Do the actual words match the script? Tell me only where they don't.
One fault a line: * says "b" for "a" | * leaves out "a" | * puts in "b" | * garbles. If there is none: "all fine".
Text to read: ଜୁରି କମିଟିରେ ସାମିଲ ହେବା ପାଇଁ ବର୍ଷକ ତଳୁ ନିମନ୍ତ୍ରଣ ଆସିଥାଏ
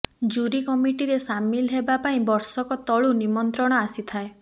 all fine